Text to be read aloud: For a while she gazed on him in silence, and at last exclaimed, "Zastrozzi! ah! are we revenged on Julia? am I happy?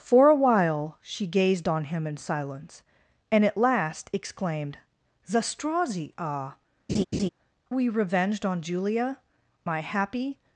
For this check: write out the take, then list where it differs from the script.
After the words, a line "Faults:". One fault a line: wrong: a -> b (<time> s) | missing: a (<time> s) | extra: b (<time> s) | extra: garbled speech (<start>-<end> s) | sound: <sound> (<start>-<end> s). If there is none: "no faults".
For a while she gazed on him in silence, and at last exclaimed, "Zastrozzi! ah! we revenged on Julia? I happy?
Faults:
missing: are (6.5 s)
sound: laugh (6.9-7.3 s)
missing: am (9.2 s)